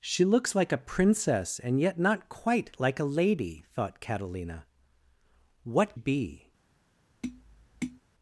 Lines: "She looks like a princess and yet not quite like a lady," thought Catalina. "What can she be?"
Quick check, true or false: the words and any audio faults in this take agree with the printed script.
false